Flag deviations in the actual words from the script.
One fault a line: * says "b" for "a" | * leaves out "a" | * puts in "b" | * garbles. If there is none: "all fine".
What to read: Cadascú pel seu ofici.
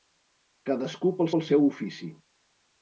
* puts in "pel"